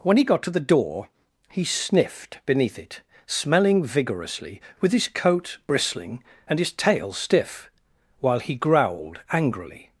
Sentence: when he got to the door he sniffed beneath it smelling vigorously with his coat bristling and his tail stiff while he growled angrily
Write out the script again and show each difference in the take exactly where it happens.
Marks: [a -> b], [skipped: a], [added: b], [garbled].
when he got to the door he sniffed beneath it smelling vigorously with his coat bristling and his tail stiff while he growled angrily